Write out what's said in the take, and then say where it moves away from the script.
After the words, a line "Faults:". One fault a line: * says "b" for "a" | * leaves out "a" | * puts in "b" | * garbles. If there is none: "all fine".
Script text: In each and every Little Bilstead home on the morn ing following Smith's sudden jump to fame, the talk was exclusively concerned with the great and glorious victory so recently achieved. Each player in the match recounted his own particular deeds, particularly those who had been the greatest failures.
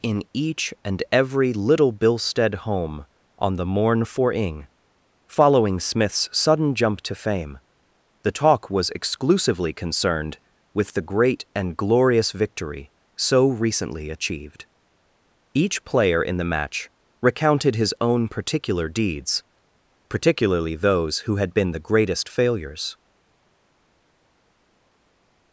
In each and every Little Bilstead home on the morn for ing following Smith's sudden jump to fame, the talk was exclusively concerned with the great and glorious victory so recently achieved. Each player in the match recounted his own particular deeds, particularly those who had been the greatest failures.
Faults:
* puts in "for"